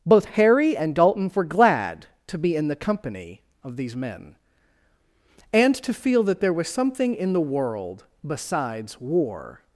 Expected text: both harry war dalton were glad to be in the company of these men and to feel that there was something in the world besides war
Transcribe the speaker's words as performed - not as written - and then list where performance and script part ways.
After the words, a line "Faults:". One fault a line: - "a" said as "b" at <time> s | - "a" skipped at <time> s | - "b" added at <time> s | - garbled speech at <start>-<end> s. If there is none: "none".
both harry and dalton were glad to be in the company of these men and to feel that there was something in the world besides war
Faults:
- "war" said as "and" at 0.8 s